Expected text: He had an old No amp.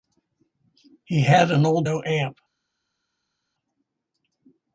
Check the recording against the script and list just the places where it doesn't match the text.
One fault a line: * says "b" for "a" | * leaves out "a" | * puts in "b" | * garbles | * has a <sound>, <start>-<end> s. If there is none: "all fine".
all fine